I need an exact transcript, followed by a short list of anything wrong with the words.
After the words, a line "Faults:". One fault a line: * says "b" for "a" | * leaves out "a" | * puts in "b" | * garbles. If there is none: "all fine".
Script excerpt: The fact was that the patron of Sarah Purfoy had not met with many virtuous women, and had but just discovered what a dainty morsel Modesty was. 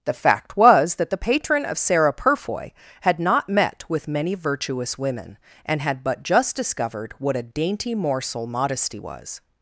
The fact was that the patron of Sarah Purfoy had not met with many virtuous women, and had but just discovered what a dainty morsel Modesty was.
Faults:
all fine